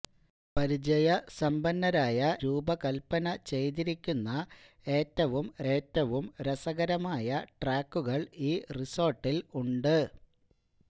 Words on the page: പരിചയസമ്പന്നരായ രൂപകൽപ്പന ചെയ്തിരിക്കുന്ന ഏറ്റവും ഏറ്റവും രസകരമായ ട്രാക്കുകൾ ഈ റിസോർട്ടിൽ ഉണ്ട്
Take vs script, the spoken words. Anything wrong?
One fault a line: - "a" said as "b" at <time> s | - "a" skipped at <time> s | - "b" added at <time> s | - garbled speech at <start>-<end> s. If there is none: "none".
none